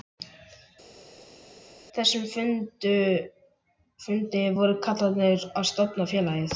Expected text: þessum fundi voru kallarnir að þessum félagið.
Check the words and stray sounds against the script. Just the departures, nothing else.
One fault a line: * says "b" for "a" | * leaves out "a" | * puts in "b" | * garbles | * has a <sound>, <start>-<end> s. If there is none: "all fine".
* says "stofna" for "þessum"